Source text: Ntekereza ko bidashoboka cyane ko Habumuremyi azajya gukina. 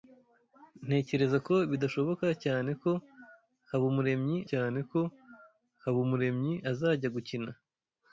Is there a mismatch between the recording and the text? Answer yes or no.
yes